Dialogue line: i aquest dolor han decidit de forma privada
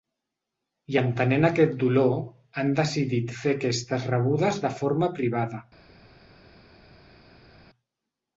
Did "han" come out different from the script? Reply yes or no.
no